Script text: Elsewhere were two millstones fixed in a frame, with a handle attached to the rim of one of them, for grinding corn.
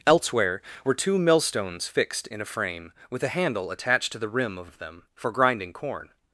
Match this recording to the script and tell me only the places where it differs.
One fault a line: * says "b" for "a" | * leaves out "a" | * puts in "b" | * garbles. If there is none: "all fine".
* leaves out "one"